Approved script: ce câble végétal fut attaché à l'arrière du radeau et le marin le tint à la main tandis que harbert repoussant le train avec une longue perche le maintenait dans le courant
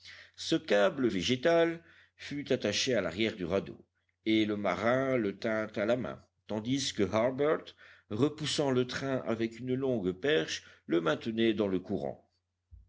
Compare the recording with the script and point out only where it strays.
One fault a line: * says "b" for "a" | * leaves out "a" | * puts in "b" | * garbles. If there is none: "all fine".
all fine